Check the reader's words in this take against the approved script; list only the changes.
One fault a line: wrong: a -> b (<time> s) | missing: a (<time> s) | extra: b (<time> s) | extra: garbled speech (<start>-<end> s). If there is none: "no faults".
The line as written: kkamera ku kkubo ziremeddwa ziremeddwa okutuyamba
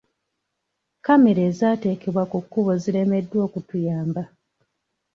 extra: ezaateekebwa (1.5 s)
missing: ziremeddwa (3.4 s)